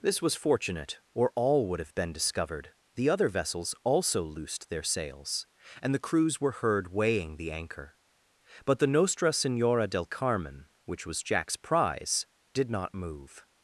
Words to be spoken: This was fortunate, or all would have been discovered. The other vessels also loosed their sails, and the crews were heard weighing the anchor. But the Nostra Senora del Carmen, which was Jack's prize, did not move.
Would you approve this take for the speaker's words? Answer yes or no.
yes